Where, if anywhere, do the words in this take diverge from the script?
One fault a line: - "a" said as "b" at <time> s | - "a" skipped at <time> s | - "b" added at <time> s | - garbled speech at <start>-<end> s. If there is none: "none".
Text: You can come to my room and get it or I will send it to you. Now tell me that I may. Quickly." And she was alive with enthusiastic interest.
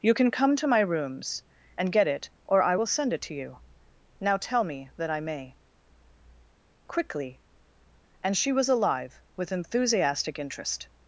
- "room" said as "rooms" at 0.8 s